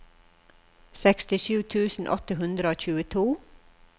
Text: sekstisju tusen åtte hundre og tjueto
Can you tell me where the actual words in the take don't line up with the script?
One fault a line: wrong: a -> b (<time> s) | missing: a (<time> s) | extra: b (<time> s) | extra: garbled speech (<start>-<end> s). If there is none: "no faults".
no faults